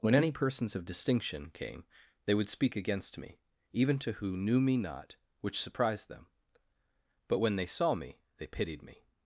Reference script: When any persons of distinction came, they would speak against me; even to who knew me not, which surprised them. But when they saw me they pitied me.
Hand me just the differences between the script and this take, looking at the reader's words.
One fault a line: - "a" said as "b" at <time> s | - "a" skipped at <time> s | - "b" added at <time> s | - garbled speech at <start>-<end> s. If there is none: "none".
none